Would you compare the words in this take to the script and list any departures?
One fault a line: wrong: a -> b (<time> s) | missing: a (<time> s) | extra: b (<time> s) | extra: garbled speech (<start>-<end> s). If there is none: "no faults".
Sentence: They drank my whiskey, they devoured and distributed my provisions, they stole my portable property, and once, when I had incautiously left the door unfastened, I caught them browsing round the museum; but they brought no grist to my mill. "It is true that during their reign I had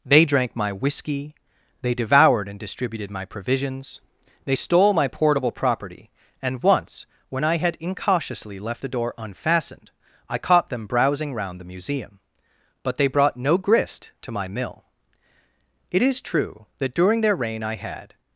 no faults